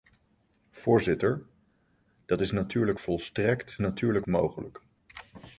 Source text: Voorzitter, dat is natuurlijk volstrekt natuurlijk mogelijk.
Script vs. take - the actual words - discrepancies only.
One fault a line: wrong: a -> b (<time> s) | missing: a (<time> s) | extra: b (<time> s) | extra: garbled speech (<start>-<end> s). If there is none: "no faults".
no faults